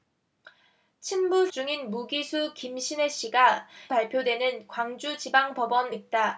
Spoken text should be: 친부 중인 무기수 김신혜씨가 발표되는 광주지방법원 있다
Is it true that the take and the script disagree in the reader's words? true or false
false